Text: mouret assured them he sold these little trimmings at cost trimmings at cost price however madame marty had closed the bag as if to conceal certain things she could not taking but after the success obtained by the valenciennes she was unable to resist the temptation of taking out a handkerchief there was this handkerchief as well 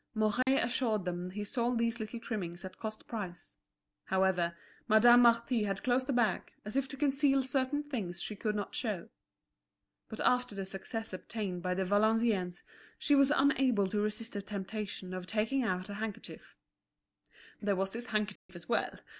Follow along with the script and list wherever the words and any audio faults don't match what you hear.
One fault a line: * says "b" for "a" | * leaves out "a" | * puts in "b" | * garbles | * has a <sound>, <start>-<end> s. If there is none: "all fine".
* has a dropout, 0.4-0.5 s
* leaves out "trimmings at cost"
* says "show" for "taking"
* has a dropout, 18.4-18.5 s